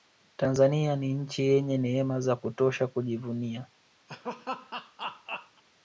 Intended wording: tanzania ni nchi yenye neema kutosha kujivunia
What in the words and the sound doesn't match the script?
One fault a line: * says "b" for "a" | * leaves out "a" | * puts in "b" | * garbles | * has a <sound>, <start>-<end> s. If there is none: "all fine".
* puts in "za"
* has a laugh, 4.1-5.6 s